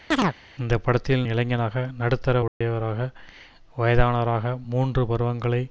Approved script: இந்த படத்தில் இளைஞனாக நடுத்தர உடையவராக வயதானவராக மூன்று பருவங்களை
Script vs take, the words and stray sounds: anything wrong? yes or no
yes